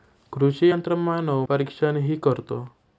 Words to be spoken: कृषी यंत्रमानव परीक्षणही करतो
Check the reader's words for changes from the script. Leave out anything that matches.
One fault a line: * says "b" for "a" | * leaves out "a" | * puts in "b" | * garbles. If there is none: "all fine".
all fine